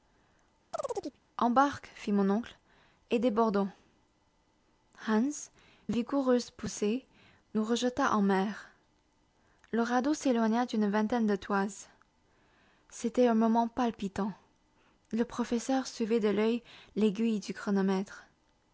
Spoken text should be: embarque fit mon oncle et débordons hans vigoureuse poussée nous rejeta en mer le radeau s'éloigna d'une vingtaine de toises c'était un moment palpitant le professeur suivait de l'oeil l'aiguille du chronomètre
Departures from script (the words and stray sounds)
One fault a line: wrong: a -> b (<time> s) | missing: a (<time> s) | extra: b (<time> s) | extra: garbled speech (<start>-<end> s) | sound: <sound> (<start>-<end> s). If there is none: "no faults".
sound: chirp (0.7-1.2 s)